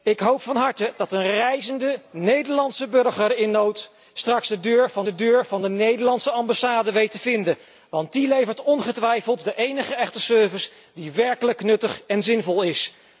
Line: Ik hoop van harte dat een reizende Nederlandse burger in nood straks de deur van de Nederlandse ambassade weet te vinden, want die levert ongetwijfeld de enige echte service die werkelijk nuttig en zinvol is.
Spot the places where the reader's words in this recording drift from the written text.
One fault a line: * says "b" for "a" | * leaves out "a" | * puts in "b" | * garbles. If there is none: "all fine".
* puts in "deur van de"